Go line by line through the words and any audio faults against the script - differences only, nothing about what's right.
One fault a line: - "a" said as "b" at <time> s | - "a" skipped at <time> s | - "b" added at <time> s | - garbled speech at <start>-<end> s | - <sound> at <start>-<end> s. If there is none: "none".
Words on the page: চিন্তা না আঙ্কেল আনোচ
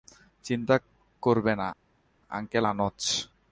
- "করবে" added at 1.2 s